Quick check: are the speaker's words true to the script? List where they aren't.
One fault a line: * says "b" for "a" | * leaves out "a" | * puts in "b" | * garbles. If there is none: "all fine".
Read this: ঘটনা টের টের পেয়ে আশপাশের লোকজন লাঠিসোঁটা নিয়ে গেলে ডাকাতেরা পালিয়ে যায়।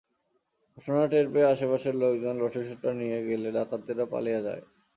* leaves out "টের"